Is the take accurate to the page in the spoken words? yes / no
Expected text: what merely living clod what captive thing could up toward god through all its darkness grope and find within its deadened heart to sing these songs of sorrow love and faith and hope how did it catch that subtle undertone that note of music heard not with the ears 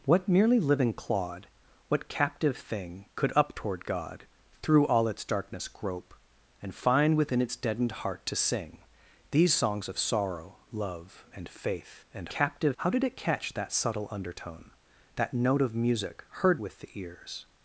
no